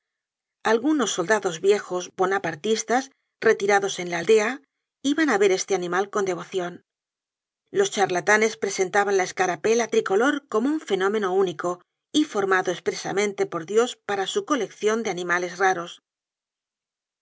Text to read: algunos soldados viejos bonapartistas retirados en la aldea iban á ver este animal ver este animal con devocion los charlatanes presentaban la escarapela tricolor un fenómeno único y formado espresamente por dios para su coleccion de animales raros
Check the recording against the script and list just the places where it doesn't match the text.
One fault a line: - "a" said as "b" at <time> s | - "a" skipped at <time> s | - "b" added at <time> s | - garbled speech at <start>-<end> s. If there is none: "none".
- "ver este animal" skipped at 6.0 s
- "como" added at 10.5 s